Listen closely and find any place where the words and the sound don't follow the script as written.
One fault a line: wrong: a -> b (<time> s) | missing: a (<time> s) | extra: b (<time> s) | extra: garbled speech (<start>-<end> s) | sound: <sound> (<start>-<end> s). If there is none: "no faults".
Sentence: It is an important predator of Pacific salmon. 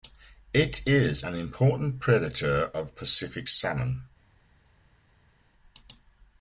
no faults